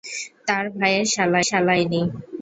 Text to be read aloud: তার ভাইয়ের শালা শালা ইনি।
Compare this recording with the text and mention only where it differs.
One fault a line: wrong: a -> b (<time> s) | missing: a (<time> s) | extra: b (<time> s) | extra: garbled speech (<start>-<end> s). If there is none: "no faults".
no faults